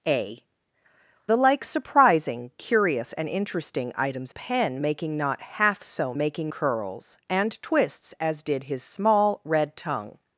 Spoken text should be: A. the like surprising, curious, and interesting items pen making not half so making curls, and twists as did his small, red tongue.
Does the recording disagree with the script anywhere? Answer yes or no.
no